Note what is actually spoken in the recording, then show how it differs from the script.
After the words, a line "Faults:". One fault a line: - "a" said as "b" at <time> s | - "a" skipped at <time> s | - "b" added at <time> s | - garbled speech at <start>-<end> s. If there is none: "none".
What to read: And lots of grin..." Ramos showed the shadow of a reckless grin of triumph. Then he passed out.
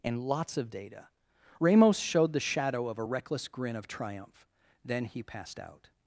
And lots of data..." Ramos showed the shadow of a reckless grin of triumph. Then he passed out.
Faults:
- "grin" said as "data" at 0.7 s